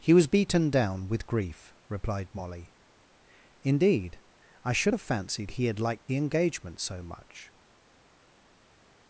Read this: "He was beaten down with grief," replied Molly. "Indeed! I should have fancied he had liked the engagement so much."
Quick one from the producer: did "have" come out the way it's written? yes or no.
yes